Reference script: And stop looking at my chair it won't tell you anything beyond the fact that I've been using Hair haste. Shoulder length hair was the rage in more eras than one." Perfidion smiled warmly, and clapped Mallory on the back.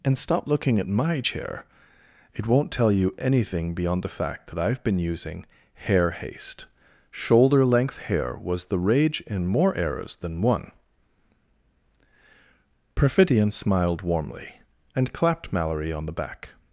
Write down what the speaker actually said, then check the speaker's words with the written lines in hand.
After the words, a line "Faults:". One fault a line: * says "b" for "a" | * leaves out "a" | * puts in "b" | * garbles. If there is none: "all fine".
And stop looking at my chair it won't tell you anything beyond the fact that I've been using Hair haste. Shoulder length hair was the rage in more eras than one." Perfidion smiled warmly, and clapped Mallory on the back.
Faults:
all fine